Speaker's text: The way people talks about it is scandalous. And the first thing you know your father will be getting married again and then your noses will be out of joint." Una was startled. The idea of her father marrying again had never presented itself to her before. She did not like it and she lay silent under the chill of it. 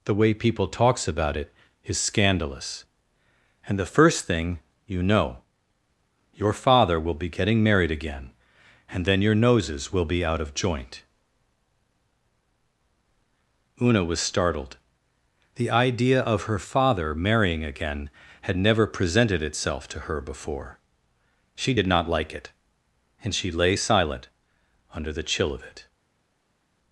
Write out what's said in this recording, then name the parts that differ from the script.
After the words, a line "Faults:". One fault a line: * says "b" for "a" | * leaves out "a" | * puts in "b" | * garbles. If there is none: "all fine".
The way people talks about it is scandalous. And the first thing you know your father will be getting married again and then your noses will be out of joint." Una was startled. The idea of her father marrying again had never presented itself to her before. She did not like it and she lay silent under the chill of it.
Faults:
all fine